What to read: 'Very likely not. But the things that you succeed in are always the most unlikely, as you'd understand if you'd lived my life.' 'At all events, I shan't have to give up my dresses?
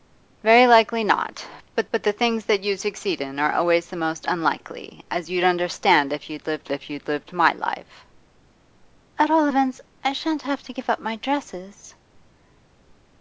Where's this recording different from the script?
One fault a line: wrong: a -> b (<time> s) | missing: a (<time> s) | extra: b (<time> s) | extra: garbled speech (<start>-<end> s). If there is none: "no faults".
extra: but (1.9 s)
extra: if you'd lived (6.7 s)